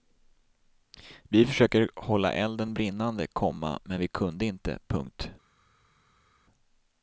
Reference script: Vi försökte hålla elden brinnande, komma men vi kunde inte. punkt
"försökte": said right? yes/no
yes